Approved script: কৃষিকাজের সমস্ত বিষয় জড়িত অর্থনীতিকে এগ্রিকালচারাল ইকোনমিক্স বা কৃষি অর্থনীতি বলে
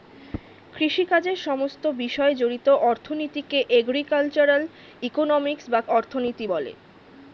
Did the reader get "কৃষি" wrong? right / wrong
wrong